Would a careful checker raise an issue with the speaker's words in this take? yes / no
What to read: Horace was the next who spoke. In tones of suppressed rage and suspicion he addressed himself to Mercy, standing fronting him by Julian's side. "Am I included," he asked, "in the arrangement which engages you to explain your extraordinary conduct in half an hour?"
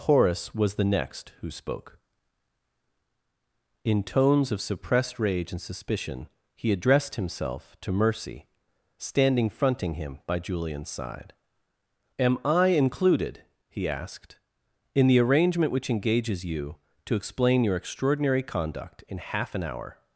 no